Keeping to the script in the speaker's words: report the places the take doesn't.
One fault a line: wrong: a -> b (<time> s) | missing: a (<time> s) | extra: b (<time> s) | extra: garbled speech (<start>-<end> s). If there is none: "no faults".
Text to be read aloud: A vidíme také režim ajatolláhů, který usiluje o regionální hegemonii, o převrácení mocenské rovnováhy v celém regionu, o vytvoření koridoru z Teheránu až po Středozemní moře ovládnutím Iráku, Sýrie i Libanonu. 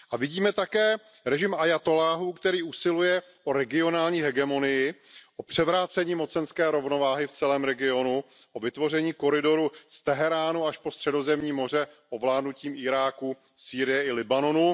no faults